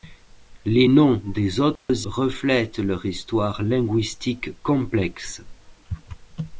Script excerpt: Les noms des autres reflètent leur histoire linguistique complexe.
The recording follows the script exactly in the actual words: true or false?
true